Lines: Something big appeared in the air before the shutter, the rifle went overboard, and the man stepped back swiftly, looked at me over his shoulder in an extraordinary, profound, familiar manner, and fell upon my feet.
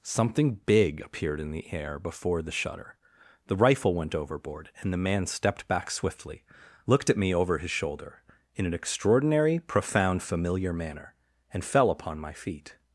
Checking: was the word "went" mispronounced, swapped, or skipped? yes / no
no